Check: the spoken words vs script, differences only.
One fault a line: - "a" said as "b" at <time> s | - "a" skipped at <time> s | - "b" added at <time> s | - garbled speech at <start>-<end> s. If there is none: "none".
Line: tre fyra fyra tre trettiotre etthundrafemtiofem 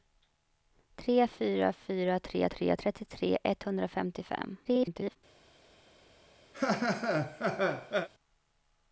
- "tre" added at 2.6 s
- garbled speech at 4.6-5.2 s